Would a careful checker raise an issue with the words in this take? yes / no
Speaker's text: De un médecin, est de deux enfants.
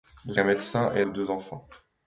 no